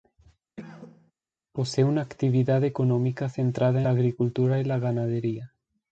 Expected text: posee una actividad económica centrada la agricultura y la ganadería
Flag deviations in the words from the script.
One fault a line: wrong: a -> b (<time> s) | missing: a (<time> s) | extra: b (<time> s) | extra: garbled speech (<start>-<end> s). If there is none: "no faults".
no faults